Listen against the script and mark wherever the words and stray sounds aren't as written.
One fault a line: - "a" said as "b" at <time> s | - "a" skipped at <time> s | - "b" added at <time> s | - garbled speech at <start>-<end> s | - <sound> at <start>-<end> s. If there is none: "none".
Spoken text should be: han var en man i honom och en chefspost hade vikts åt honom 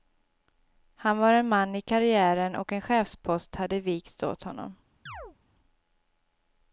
- "honom" said as "karriären" at 1.8 s
- chirp at 5.1-5.4 s